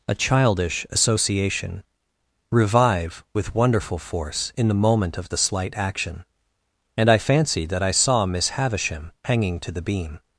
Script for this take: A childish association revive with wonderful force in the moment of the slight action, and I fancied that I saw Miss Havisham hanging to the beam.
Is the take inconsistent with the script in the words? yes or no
no